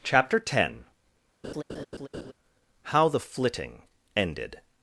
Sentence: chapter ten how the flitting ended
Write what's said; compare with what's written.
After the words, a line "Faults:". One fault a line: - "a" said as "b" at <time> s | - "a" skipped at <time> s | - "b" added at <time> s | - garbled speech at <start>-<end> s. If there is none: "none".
chapter ten how the flitting ended
Faults:
none